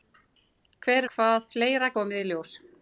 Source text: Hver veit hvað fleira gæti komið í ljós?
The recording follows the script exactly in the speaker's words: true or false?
false